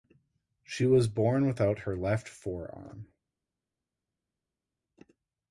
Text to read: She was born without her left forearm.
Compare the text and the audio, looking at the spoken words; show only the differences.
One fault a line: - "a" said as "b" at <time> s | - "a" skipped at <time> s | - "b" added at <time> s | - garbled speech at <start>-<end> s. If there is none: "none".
none